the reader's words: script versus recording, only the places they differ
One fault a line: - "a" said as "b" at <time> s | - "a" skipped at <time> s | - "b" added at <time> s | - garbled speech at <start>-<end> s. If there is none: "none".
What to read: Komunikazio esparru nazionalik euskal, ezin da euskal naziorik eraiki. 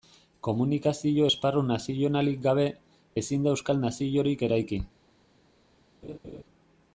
- "euskal" said as "gabe" at 2.5 s